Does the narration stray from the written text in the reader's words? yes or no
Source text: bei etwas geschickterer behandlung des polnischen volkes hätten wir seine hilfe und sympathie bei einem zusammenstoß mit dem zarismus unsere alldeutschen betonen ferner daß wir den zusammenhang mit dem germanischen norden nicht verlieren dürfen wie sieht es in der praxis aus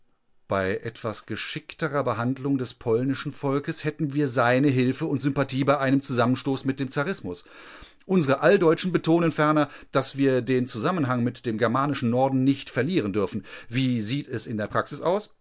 no